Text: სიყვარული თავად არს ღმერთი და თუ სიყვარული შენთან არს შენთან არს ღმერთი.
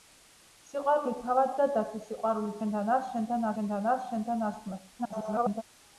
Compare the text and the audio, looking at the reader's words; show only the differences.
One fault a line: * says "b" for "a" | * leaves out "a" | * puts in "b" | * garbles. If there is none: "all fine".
* leaves out "არს ღმერთი"
* puts in "შენთან არს შენთან"
* garbles